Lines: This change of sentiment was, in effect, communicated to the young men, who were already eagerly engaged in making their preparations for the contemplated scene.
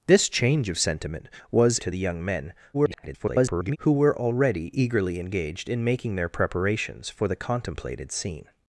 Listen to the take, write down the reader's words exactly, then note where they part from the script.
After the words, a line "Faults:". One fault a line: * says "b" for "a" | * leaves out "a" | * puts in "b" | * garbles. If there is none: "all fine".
This change of sentiment was, to the young men, [garbled] who were already eagerly engaged in making their preparations for the contemplated scene.
Faults:
* leaves out "in effect communicated"
* garbles